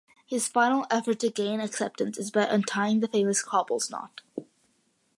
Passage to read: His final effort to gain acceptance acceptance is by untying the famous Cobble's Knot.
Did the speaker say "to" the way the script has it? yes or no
yes